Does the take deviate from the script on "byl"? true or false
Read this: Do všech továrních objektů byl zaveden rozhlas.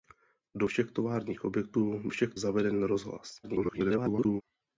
true